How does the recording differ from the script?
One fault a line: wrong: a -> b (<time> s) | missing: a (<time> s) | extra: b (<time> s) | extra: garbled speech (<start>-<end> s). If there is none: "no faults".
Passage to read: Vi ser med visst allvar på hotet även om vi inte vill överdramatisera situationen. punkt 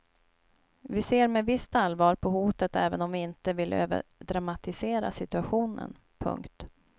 no faults